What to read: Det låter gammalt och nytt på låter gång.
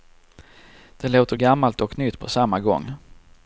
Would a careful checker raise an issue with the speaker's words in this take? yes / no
yes